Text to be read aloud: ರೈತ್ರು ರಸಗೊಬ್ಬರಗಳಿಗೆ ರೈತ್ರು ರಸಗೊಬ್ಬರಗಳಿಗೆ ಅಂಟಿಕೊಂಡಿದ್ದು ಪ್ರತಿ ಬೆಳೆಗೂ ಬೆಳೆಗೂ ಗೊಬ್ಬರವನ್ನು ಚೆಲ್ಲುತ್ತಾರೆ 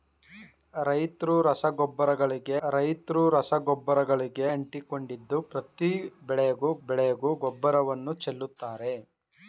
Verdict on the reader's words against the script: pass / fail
pass